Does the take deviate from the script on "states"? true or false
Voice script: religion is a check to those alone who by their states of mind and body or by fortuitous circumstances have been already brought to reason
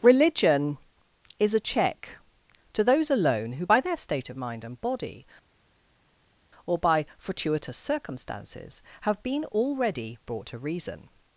true